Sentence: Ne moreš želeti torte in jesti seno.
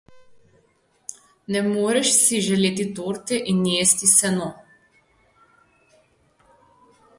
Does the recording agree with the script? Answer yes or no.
no